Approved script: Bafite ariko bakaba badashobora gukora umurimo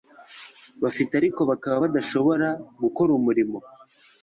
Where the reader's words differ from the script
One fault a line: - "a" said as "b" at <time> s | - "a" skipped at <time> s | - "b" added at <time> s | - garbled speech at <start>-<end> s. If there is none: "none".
none